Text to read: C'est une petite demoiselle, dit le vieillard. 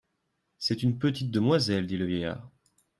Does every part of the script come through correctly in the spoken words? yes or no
yes